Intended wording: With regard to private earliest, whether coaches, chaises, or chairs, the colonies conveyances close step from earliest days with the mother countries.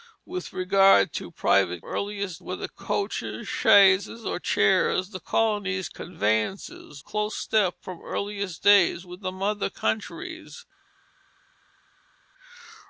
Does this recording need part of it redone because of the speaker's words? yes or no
no